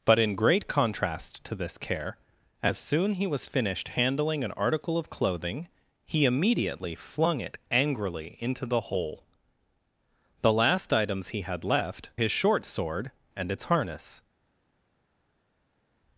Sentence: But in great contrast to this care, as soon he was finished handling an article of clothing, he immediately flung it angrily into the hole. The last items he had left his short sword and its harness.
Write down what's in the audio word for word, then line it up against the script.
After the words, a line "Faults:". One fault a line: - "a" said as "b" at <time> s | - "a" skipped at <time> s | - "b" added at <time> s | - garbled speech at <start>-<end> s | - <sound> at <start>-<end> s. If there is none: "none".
But in great contrast to this care, as soon he was finished handling an article of clothing, he immediately flung it angrily into the hole. The last items he had left his short sword and its harness.
Faults:
none